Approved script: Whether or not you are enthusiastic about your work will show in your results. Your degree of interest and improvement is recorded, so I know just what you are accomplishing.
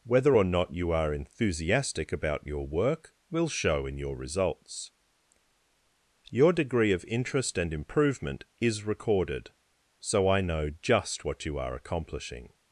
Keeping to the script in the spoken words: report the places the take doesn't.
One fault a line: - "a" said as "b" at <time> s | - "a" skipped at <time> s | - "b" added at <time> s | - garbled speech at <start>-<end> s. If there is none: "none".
none